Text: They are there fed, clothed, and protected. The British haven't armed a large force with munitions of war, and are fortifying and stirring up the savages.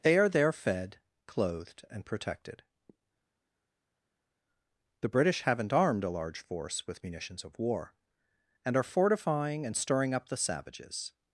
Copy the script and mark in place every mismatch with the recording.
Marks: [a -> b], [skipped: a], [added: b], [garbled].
They are there fed, clothed, and protected. The British haven't armed a large force with munitions of war, and are fortifying and stirring up the savages.